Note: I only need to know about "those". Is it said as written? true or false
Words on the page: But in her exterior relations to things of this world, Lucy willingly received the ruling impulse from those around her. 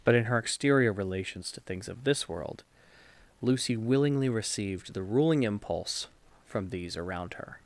false